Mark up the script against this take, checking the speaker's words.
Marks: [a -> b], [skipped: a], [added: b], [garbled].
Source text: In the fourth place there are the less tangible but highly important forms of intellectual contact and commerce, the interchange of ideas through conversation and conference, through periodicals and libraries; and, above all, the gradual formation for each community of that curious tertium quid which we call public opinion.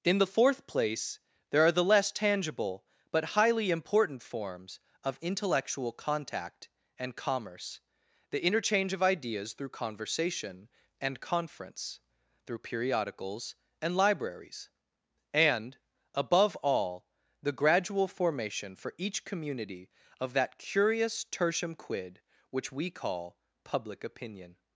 In the fourth place there are the less tangible but highly important forms of intellectual contact and commerce, the interchange of ideas through conversation and conference, through periodicals and libraries; and, above all, the gradual formation for each community of that curious tertium quid which we call public opinion.